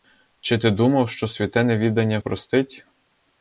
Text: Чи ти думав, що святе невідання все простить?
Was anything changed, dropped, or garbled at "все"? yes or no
yes